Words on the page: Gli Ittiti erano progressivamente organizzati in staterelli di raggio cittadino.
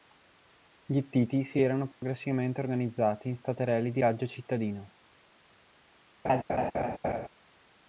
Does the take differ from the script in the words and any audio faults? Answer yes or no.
yes